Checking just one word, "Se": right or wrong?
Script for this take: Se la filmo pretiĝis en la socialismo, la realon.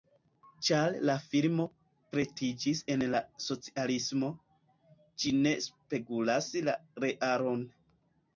wrong